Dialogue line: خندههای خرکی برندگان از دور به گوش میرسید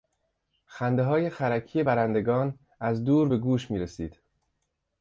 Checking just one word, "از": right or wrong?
right